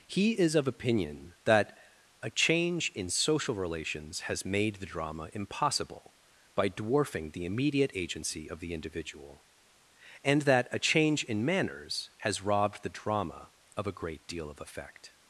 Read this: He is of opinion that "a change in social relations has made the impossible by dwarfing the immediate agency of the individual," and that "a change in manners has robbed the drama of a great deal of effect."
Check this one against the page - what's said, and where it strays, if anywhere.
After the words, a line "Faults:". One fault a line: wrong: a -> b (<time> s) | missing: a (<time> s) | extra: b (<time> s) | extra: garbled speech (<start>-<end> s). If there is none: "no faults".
He is of opinion that "a change in social relations has made the drama impossible by dwarfing the immediate agency of the individual," and that "a change in manners has robbed the drama of a great deal of effect."
Faults:
extra: drama (4.8 s)